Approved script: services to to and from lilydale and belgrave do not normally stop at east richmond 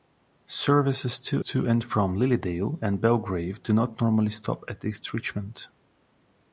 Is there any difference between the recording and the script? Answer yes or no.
no